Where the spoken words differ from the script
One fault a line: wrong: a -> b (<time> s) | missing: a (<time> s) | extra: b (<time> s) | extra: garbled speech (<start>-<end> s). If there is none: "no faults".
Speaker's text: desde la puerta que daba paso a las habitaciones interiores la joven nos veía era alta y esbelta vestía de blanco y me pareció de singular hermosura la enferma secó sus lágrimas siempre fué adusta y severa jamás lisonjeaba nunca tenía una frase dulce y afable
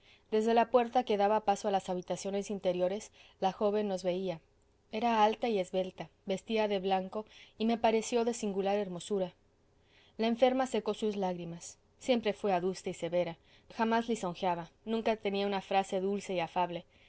no faults